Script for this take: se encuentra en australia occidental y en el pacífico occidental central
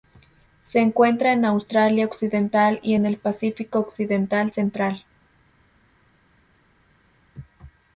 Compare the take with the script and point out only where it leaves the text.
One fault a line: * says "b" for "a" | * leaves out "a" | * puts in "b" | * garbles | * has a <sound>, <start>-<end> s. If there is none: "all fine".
all fine